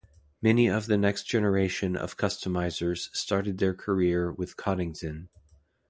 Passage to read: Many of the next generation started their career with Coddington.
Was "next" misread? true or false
false